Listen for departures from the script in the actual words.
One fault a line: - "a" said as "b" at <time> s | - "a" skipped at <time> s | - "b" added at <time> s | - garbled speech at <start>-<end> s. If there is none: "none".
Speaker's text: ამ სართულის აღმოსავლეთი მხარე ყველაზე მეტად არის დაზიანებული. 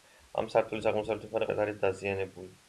- "ყველაზე" skipped at 1.5 s